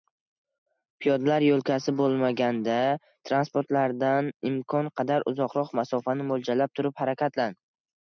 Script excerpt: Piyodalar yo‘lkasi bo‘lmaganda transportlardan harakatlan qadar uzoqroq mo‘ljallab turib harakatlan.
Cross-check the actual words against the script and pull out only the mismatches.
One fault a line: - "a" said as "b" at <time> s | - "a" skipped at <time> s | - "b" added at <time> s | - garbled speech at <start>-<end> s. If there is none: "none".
- "harakatlan" said as "imkon" at 4.5 s
- "masofani" added at 5.8 s